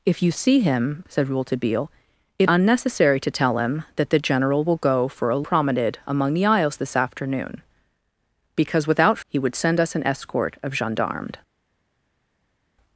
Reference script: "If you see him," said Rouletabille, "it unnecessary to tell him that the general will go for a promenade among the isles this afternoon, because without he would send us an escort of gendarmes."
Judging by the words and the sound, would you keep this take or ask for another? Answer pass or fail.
pass